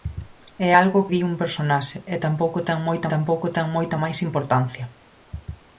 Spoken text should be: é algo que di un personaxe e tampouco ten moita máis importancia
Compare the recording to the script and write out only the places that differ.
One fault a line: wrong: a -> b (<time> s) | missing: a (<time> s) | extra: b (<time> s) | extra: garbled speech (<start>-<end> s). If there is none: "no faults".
missing: que (1.1 s)
extra: tampouco ten moita (3.1 s)